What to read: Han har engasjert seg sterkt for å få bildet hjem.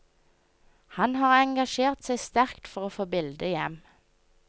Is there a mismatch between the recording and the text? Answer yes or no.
no